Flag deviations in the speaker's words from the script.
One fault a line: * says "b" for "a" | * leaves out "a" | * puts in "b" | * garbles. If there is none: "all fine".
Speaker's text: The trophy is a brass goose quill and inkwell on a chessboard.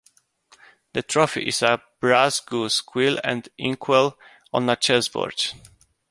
all fine